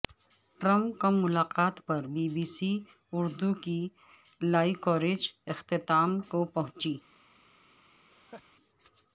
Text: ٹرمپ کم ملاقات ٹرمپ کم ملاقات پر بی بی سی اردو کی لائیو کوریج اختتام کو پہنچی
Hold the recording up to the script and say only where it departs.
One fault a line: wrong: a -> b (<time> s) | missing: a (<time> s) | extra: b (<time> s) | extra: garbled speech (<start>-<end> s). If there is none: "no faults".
missing: ٹرمپ کم ملاقات (1.8 s)